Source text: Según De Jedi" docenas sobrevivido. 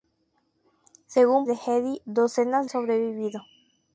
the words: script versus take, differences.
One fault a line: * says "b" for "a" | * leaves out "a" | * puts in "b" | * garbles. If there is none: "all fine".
all fine